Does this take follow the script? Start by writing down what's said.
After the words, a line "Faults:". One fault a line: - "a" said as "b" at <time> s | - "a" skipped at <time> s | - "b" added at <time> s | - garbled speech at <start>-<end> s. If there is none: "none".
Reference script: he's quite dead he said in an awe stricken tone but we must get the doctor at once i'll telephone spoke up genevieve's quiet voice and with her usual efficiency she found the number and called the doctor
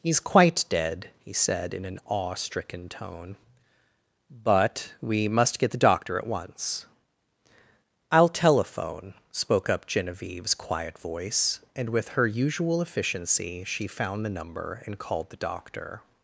he's quite dead he said in an awe stricken tone but we must get the doctor at once i'll telephone spoke up genevieve's quiet voice and with her usual efficiency she found the number and called the doctor
Faults:
none